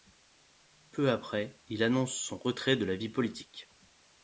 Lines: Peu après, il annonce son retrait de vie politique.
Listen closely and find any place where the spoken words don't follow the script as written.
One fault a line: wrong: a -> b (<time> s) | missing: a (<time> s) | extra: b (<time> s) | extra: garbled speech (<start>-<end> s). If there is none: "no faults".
extra: la (2.9 s)